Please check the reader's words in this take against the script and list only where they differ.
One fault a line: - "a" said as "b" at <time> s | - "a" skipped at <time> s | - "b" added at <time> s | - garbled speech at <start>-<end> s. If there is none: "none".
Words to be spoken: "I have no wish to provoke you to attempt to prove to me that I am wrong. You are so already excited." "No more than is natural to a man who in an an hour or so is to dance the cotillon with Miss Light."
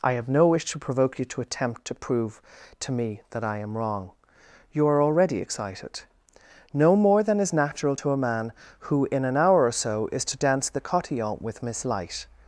- "so" skipped at 5.0 s
- "an" skipped at 9.4 s